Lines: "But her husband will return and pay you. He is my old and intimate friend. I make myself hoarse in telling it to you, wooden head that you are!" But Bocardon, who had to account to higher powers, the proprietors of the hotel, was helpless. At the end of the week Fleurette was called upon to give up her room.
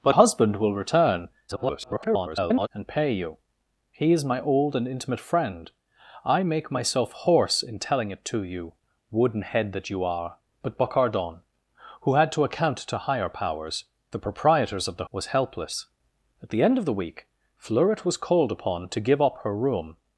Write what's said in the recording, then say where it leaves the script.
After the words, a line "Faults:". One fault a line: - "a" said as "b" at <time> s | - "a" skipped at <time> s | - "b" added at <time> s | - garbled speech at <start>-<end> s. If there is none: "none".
"But husband will return [garbled] and pay you. He is my old and intimate friend. I make myself hoarse in telling it to you, wooden head that you are!" But Bocardon, who had to account to higher powers, the proprietors of the was helpless. At the end of the week Fleurette was called upon to give up her room.
Faults:
- "her" skipped at 0.1 s
- garbled speech at 1.5-2.7 s
- "hotel" skipped at 15.1 s